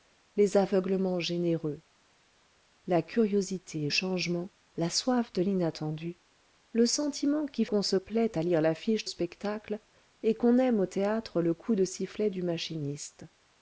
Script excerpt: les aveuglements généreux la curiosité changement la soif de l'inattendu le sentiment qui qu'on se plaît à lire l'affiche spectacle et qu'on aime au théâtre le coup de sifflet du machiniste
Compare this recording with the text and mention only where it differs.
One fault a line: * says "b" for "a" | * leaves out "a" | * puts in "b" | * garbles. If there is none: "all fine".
all fine